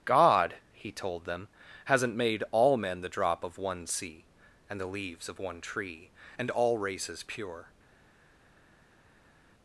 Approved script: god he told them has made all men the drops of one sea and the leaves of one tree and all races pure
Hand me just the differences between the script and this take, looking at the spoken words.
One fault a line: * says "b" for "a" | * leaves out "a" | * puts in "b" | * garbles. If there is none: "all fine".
* says "hasn't" for "has"
* says "drop" for "drops"